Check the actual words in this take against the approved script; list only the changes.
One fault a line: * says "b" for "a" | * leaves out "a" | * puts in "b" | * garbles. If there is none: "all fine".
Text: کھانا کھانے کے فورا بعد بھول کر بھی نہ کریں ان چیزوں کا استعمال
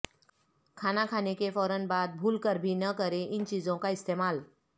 all fine